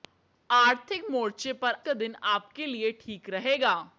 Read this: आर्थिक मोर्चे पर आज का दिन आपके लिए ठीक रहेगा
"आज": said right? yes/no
no